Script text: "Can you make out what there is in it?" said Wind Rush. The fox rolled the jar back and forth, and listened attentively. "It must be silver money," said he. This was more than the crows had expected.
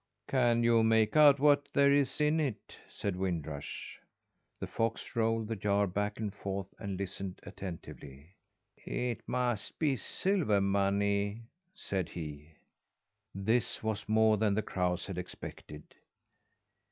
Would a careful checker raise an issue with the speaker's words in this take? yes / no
no